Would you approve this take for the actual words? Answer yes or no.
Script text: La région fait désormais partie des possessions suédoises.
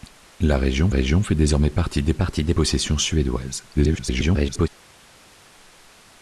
no